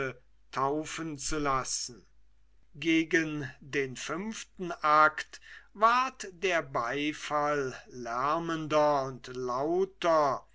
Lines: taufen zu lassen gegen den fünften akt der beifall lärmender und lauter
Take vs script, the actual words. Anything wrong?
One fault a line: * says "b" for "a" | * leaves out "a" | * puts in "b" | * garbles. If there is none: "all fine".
* puts in "ward"